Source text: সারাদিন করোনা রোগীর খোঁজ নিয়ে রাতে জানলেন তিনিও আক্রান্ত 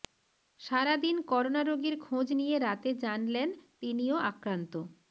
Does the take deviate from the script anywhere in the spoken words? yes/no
no